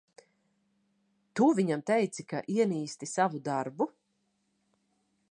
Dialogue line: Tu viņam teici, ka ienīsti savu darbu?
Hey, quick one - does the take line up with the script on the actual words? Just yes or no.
yes